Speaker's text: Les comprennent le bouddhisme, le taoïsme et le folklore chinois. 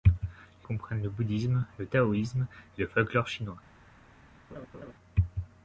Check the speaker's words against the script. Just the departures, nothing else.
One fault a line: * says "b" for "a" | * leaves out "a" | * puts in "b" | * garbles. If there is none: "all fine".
all fine